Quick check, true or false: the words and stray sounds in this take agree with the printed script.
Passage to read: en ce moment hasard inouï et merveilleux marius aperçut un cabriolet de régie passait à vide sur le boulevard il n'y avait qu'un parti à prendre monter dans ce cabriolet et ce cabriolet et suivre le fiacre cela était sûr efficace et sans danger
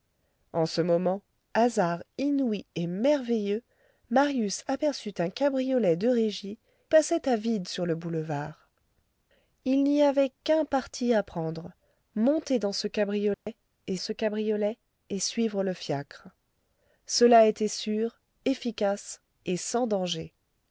false